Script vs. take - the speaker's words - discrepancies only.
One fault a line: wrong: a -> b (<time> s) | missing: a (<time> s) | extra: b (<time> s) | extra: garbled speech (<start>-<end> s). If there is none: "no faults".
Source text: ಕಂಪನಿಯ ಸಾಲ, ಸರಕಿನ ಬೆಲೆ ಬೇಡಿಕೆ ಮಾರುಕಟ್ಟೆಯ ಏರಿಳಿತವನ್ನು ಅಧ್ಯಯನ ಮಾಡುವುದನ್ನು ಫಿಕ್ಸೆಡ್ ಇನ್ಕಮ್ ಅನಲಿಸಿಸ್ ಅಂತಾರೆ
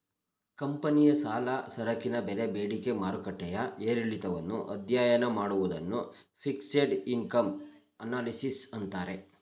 no faults